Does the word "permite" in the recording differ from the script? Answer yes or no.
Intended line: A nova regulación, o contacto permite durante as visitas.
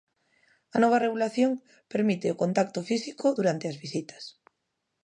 yes